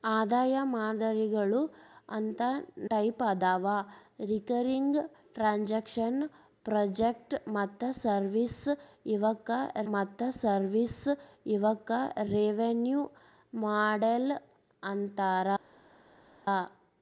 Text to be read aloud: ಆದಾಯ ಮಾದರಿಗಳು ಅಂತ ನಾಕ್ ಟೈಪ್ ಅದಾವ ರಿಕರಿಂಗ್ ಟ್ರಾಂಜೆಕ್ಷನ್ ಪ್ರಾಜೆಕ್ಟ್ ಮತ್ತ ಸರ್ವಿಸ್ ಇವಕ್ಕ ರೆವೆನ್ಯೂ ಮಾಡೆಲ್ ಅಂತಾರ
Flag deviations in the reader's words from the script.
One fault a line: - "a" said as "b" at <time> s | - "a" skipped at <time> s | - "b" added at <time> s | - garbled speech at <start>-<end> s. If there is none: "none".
- "ನಾಕ್" skipped at 2.4 s
- "ಮತ್ತ ಸರ್ವಿಸ್ ಇವಕ್ಕ" added at 9.9 s